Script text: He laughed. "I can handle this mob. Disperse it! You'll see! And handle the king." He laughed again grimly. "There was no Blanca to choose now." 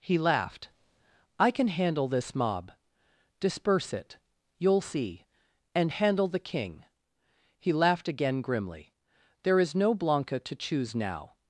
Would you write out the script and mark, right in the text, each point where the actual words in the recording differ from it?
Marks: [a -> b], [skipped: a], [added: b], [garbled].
He laughed. "I can handle this mob. Disperse it! You'll see! And handle the king." He laughed again grimly. "There [was -> is] no Blanca to choose now."